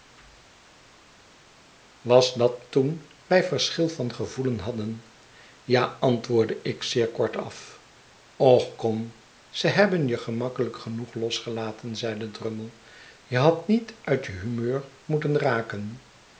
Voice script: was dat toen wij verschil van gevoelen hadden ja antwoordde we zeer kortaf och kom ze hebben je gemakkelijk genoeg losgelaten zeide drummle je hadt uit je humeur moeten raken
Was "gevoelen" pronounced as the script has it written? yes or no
yes